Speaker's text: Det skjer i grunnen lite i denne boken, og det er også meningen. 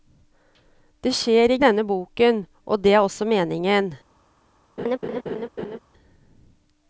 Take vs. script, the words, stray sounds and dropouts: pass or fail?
fail